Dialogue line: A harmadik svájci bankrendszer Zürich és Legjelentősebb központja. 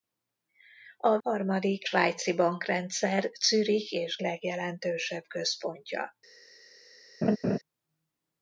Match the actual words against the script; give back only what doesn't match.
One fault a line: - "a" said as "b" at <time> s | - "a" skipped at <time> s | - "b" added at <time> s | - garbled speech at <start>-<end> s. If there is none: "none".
none